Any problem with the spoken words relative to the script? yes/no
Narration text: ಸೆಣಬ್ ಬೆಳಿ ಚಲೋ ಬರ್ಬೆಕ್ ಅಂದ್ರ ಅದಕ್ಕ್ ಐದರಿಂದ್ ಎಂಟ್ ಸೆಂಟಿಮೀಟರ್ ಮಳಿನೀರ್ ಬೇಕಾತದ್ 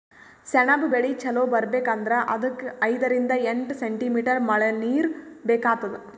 no